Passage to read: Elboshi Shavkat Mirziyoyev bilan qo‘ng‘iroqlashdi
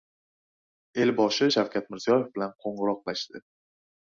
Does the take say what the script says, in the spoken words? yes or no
yes